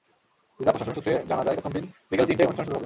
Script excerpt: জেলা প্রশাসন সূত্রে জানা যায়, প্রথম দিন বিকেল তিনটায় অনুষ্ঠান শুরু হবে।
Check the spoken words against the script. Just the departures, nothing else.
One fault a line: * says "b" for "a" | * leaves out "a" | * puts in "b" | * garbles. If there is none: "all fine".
all fine